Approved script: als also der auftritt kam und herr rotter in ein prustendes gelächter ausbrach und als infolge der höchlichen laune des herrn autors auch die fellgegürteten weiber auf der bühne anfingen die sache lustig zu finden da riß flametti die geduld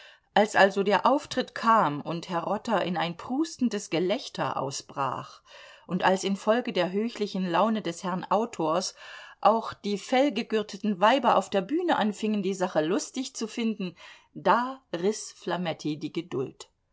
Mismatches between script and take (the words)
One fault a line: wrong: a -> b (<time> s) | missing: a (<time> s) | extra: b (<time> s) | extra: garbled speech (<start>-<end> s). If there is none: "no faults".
no faults